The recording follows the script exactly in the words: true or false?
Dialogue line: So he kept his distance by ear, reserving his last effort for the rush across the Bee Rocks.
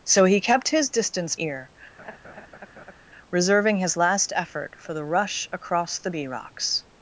false